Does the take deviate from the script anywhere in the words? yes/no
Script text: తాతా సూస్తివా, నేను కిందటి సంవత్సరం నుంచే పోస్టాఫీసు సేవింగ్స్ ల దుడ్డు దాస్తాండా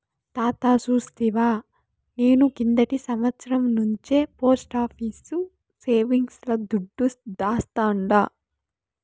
no